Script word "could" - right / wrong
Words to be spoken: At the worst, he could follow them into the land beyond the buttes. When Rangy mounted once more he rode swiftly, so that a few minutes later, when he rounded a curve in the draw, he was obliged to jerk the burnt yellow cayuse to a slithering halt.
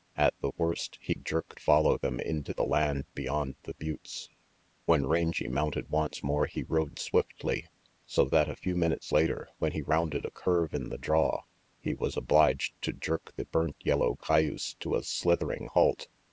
wrong